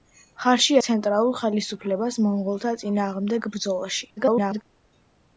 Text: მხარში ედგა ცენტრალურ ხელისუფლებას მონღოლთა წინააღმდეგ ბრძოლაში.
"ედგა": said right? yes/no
no